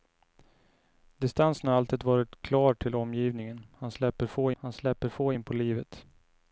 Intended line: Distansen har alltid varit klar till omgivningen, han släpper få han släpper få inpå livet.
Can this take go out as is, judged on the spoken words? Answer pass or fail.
pass